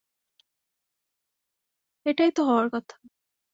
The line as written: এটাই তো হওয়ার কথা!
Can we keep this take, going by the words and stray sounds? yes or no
yes